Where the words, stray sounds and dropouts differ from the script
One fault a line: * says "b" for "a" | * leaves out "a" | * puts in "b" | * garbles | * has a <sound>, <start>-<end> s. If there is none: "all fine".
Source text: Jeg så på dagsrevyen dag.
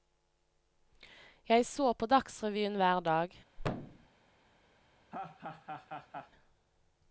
* puts in "hver"
* has a thud, 3.6-4.1 s
* has a laugh, 5.1-6.3 s